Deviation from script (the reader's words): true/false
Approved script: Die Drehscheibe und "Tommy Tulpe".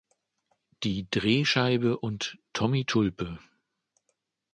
false